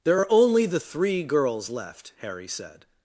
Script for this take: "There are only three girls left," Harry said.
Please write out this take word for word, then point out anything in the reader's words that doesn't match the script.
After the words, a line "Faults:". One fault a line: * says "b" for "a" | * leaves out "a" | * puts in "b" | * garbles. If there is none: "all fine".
"There are only the three girls left," Harry said.
Faults:
* puts in "the"